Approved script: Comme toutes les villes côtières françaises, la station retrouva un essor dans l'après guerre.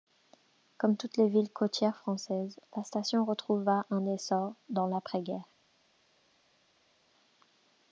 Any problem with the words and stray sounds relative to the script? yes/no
no